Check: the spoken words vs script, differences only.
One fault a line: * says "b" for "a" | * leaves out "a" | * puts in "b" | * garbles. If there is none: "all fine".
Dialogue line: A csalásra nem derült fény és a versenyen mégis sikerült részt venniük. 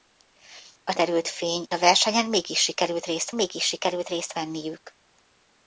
* leaves out "csalásra nem"
* leaves out "és"
* puts in "mégis sikerült részt"